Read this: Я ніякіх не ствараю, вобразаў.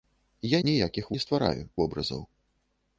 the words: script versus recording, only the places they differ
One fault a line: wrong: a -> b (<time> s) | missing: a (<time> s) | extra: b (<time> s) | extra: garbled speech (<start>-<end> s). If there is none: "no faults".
no faults